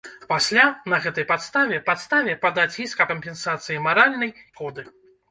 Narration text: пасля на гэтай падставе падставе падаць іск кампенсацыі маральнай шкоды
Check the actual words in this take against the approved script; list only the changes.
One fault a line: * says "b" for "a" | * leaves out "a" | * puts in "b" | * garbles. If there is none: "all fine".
all fine